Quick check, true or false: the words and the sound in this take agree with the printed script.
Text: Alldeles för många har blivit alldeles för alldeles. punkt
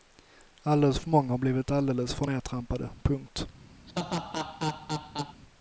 false